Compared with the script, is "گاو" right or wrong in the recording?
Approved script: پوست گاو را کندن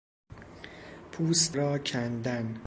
wrong